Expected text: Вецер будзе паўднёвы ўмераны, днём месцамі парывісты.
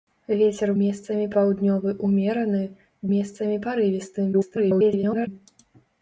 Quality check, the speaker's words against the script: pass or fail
fail